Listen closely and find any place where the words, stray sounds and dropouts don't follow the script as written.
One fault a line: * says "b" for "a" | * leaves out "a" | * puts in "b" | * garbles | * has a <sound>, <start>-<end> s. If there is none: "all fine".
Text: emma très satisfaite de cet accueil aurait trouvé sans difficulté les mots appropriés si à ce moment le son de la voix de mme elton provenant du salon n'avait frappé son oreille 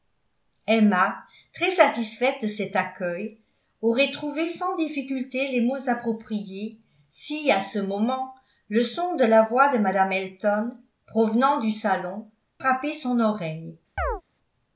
* leaves out "n'avait"
* has a chirp, 14.0-14.2 s